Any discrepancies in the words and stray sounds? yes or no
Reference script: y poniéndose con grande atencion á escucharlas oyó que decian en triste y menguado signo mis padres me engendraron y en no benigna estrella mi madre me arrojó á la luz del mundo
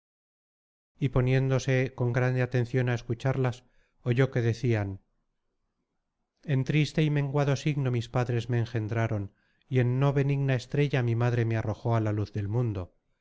no